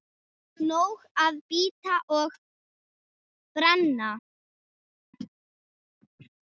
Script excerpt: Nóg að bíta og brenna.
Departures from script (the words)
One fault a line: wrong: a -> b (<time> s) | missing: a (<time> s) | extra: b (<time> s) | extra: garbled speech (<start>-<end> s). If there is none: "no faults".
no faults